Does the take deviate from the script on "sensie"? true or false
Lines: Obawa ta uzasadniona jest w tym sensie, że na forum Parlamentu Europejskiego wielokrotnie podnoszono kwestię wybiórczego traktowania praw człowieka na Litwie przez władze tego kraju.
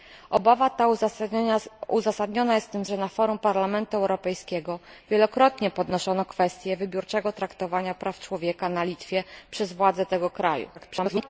true